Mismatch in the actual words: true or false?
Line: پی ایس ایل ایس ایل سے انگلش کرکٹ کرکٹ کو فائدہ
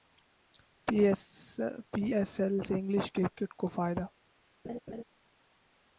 true